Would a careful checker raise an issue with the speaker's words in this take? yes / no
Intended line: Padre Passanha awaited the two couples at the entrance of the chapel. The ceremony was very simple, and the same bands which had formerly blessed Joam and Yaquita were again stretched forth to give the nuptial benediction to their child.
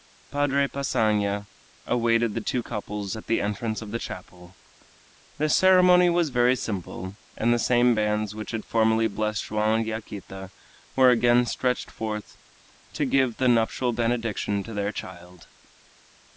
no